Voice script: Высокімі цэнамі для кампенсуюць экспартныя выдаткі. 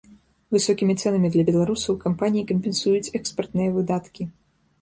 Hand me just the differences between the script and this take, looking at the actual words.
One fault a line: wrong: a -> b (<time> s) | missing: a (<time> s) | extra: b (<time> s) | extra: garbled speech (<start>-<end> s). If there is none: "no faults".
extra: беларусаў кампаніі (1.5 s)